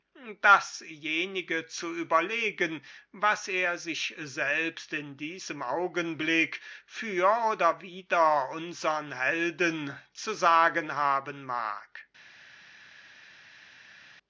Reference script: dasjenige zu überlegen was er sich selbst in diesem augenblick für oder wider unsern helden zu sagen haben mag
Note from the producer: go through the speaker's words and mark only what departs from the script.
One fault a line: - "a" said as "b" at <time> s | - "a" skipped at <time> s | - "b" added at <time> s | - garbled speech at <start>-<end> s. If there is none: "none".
none